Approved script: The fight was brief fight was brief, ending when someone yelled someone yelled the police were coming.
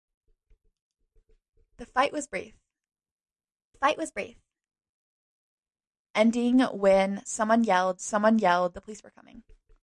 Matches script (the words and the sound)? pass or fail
pass